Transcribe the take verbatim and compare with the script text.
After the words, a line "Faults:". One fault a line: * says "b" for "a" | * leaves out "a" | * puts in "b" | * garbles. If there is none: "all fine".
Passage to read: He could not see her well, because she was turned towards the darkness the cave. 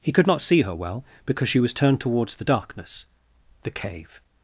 He could not see her well, because she was turned towards the darkness the cave.
Faults:
all fine